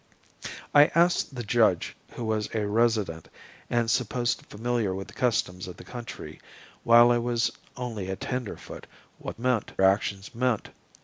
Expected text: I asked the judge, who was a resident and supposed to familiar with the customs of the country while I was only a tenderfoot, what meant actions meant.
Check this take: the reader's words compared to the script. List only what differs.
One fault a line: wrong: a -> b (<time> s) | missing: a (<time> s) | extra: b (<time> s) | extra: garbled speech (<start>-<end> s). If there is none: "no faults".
no faults